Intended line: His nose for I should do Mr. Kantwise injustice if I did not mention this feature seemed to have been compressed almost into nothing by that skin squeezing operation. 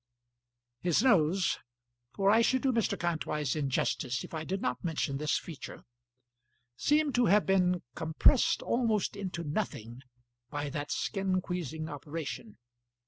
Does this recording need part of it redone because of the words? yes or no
no